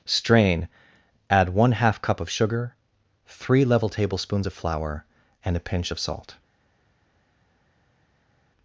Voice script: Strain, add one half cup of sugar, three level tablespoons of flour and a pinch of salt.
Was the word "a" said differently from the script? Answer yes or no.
no